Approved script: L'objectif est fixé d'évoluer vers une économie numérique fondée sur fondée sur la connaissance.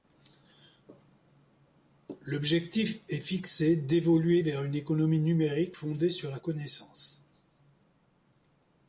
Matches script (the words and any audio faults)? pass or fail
fail